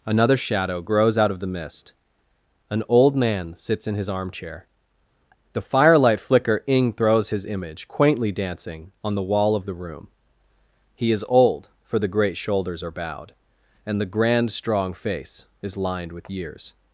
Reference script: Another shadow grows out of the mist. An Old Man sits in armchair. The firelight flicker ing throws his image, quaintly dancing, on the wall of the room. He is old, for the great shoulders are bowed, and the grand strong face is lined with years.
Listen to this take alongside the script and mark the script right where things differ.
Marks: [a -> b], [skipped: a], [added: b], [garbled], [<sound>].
Another shadow grows out of the mist. An Old Man sits in [added: his] armchair. The firelight flicker ing throws his image, quaintly dancing, on the wall of the room. He is old, for the great shoulders are bowed, and the grand strong face is lined with years.